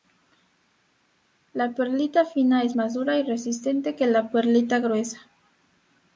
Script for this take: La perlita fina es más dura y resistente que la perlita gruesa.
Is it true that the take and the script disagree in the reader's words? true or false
false